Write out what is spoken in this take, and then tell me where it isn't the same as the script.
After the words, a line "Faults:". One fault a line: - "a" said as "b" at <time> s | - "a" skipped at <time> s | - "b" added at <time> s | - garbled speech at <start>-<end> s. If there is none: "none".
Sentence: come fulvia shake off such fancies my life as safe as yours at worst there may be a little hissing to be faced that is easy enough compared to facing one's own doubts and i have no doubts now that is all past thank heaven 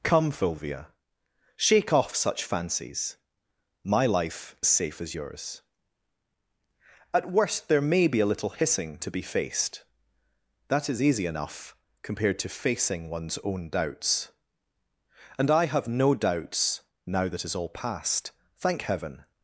come fulvia shake off such fancies my life as safe as yours at worst there may be a little hissing to be faced that is easy enough compared to facing one's own doubts and i have no doubts now that is all past thank heaven
Faults:
none